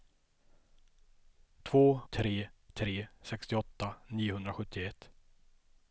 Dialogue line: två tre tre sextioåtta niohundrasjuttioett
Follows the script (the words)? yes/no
yes